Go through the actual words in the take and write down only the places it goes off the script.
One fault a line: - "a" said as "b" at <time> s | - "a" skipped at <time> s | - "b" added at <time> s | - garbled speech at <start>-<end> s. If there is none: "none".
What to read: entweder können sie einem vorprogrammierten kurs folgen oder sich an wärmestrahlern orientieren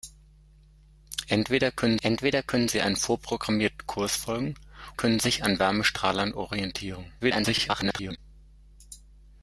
- "entweder können" added at 2.0 s
- "oder" said as "können" at 4.9 s
- garbled speech at 7.2-8.2 s